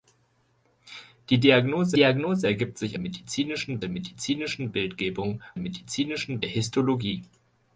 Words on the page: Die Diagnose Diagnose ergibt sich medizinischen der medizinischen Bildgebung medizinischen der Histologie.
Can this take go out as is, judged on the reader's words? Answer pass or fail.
pass